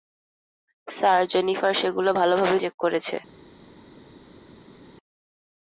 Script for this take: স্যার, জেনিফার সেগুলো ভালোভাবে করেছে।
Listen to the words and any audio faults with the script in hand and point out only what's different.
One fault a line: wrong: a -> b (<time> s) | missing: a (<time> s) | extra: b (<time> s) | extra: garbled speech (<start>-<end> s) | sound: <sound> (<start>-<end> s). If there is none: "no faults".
extra: চেক (2.6 s)